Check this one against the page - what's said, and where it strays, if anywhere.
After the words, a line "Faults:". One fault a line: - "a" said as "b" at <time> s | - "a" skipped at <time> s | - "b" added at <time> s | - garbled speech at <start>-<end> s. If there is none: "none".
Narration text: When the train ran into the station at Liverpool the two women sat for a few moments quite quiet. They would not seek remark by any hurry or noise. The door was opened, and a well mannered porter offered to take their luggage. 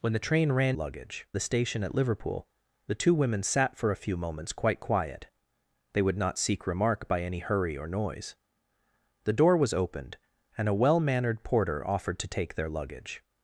When the train ran luggage the station at Liverpool the two women sat for a few moments quite quiet. They would not seek remark by any hurry or noise. The door was opened, and a well mannered porter offered to take their luggage.
Faults:
- "into" said as "luggage" at 0.7 s